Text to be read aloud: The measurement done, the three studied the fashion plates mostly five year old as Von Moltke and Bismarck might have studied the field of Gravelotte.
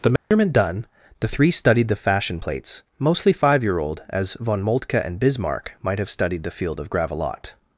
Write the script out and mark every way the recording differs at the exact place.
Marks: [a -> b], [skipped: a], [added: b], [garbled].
The measurement done, the three studied the fashion plates mostly five year old as Von Moltke and Bismarck might have studied the field of Gravelotte.